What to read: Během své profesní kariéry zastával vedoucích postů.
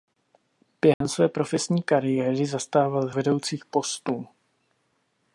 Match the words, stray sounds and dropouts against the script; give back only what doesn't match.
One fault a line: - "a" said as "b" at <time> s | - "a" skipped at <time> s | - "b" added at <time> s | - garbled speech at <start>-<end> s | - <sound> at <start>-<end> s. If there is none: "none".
- dropout at 0.9-1.0 s